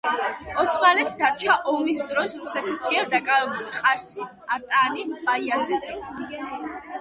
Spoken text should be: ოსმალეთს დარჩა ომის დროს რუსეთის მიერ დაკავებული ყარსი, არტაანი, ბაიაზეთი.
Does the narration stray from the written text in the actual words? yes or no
no